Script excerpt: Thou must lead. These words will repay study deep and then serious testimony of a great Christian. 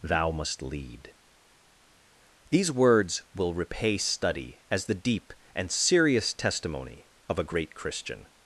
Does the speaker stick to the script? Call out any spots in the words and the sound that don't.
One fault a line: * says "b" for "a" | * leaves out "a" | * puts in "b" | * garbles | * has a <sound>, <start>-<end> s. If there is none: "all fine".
* puts in "as the"
* leaves out "then"